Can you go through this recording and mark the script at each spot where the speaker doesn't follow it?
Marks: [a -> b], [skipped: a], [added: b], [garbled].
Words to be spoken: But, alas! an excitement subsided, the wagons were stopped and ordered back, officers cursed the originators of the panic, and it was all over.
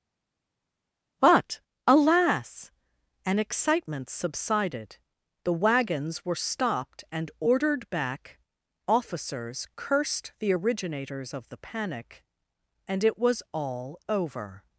But, alas! an excitement subsided, the wagons were stopped and ordered back, officers cursed the originators of the panic, and it was all over.